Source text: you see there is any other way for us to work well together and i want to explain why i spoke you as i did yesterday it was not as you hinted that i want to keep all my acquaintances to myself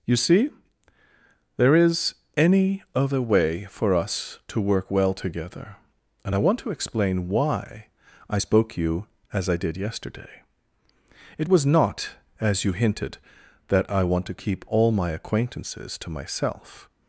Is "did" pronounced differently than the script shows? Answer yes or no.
no